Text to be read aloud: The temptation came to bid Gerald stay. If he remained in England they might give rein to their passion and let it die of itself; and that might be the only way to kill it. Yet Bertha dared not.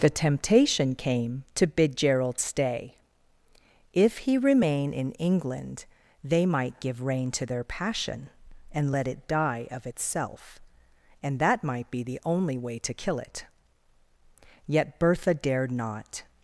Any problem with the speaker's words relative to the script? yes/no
yes